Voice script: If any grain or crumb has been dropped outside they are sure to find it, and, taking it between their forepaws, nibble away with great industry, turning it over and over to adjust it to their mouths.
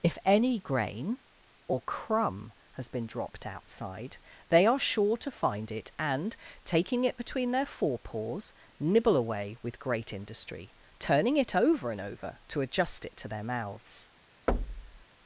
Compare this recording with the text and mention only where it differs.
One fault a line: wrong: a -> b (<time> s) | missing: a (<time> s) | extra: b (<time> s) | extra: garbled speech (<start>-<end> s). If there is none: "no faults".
no faults